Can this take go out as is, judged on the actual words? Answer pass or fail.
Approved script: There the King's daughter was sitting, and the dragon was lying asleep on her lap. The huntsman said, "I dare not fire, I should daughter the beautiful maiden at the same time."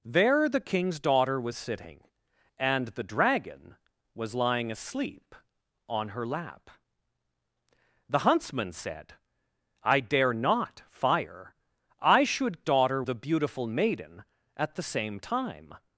pass